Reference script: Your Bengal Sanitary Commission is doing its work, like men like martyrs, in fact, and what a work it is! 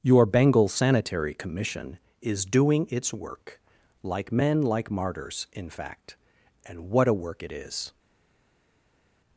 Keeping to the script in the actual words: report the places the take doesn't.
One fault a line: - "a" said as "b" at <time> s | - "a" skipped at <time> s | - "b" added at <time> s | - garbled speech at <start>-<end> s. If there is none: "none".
none